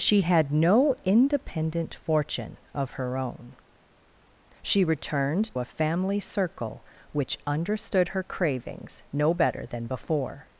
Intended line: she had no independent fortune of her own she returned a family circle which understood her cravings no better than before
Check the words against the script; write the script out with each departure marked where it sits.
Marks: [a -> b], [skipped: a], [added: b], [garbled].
she had no independent fortune of her own she returned a family circle which understood her cravings no better than before